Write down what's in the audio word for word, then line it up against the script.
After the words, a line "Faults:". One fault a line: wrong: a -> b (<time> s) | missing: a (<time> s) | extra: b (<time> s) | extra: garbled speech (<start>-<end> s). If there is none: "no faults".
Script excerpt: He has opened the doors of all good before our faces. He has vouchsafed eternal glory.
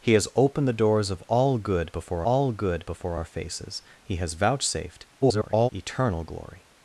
He has opened the doors of all good before all good before our faces. He has vouchsafed [garbled] eternal glory.
Faults:
extra: all good before (2.2 s)
extra: garbled speech (5.2-5.7 s)